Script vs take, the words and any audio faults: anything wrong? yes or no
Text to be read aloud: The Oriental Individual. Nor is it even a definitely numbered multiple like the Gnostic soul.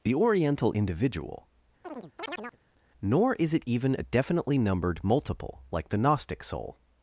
yes